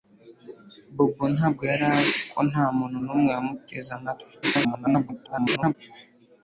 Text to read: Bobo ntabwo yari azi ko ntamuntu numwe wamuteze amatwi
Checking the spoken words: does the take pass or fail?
fail